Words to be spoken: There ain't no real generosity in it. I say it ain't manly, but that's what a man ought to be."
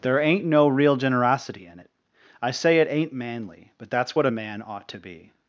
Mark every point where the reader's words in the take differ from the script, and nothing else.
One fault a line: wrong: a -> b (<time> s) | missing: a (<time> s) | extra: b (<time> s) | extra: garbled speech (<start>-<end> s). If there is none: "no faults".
no faults